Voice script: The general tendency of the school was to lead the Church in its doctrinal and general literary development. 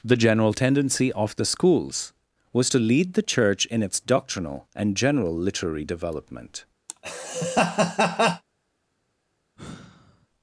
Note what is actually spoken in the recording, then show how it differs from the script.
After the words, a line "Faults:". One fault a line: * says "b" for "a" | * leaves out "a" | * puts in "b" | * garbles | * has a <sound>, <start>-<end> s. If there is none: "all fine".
The general tendency of the schools was to lead the Church in its doctrinal and general literary development.
Faults:
* says "schools" for "school"
* has a laugh, 6.9-8.4 s
* has a sigh, 9.6-10.3 s